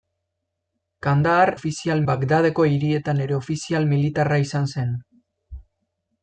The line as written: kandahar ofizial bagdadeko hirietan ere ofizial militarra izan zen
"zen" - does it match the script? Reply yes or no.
yes